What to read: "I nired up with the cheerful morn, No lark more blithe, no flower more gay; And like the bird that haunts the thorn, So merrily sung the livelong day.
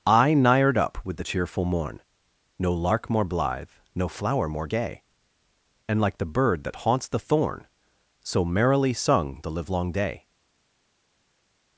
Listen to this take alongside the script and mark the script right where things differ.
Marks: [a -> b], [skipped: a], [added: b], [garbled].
"I nired up with the cheerful morn, No lark more blithe, no flower more gay; And like the bird that haunts the thorn, So merrily sung the livelong day.